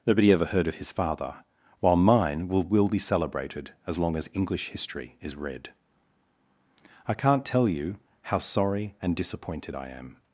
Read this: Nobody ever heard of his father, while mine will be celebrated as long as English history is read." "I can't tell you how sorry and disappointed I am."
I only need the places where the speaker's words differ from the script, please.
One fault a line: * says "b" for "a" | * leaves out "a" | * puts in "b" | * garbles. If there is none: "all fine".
* puts in "will"